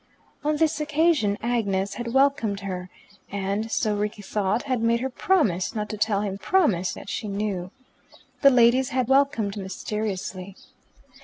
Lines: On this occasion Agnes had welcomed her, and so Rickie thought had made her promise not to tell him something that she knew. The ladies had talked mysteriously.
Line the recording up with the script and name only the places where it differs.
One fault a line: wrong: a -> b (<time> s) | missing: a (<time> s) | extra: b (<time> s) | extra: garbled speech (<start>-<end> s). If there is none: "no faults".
wrong: something -> promise (6.3 s)
wrong: talked -> welcomed (9.1 s)